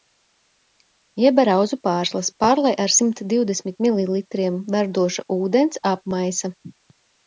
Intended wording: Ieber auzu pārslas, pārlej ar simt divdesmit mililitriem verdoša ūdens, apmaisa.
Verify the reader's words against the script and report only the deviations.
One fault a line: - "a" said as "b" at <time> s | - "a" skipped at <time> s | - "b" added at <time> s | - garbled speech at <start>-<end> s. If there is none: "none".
none